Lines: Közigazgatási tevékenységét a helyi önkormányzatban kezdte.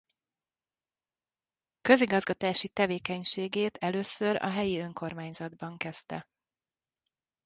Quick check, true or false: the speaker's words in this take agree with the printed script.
false